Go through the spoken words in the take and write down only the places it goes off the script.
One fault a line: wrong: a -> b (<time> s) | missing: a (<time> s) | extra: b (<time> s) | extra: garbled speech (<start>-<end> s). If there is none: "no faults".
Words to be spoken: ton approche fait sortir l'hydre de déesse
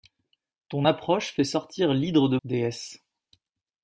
no faults